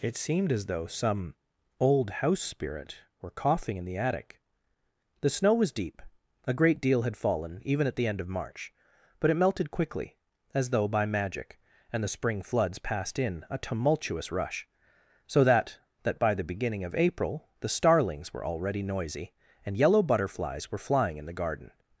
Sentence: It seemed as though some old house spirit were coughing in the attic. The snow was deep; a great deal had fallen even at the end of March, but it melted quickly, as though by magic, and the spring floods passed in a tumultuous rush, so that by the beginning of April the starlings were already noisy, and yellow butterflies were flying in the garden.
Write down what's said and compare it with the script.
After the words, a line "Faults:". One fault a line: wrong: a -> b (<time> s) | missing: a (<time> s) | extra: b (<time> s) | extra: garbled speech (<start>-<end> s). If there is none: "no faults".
It seemed as though some old house spirit were coughing in the attic. The snow was deep; a great deal had fallen even at the end of March, but it melted quickly, as though by magic, and the spring floods passed in a tumultuous rush, so that that by the beginning of April the starlings were already noisy, and yellow butterflies were flying in the garden.
Faults:
extra: that (16.0 s)